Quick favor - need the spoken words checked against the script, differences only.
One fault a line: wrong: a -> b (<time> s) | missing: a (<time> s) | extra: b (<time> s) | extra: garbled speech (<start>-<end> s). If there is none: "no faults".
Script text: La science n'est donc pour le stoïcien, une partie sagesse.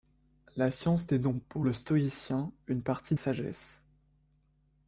no faults